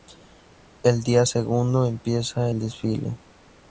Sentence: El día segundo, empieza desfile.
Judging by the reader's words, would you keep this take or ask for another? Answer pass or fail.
fail